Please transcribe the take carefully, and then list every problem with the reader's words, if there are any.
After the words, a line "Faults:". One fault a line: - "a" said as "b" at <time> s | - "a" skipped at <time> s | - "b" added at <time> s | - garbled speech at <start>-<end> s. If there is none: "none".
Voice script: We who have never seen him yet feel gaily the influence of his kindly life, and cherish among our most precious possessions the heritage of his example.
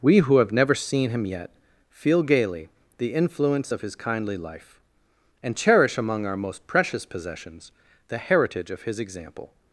We who have never seen him yet feel gaily the influence of his kindly life, and cherish among our most precious possessions the heritage of his example.
Faults:
none